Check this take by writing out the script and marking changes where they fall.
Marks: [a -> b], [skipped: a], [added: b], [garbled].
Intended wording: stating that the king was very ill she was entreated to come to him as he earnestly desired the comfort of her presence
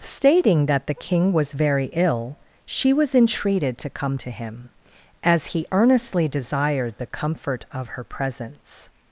stating that the king was very ill she was entreated to come to him as he earnestly desired the comfort of her presence